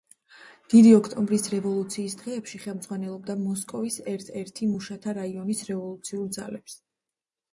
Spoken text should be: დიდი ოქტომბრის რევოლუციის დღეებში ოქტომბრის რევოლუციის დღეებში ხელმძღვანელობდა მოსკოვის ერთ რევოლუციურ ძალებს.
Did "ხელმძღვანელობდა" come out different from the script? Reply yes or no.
yes